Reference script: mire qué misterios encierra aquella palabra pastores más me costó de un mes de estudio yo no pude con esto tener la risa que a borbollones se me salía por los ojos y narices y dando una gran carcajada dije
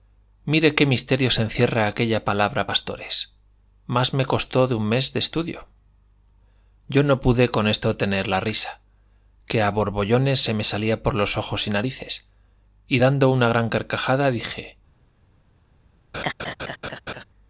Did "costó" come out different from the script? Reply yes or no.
no